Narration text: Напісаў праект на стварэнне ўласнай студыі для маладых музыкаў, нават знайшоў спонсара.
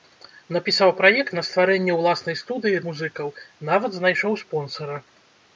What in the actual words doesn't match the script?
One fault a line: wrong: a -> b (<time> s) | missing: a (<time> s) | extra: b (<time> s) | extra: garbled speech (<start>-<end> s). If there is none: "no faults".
missing: для маладых (2.8 s)